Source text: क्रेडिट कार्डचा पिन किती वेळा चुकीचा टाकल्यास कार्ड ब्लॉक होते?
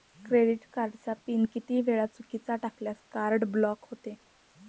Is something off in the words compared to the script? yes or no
no